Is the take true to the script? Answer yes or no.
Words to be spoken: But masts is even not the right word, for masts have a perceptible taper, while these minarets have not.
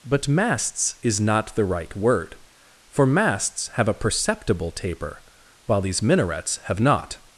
no